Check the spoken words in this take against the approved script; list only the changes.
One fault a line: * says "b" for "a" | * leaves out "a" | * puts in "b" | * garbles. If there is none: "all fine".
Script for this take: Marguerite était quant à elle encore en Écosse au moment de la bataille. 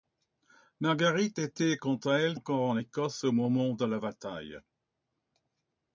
all fine